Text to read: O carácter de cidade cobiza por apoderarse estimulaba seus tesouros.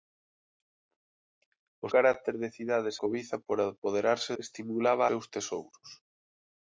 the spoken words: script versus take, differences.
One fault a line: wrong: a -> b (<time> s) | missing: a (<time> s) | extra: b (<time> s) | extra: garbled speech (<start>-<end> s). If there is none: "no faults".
no faults